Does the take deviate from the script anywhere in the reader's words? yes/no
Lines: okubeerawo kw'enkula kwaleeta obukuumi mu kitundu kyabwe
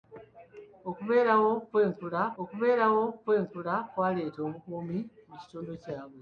yes